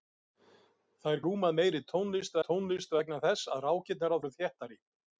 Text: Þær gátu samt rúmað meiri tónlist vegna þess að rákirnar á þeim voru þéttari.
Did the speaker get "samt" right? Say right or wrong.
wrong